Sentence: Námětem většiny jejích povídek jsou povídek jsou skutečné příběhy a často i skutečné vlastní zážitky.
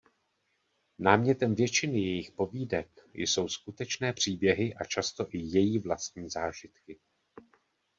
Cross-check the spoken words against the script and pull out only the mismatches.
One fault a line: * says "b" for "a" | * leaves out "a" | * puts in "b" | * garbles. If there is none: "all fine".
* leaves out "povídek jsou"
* says "její" for "skutečné"